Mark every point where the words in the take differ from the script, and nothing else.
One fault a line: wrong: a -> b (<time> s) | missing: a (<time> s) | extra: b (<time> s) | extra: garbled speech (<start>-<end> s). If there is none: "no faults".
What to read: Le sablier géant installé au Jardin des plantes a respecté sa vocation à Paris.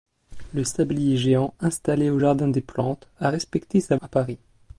missing: vocation (4.0 s)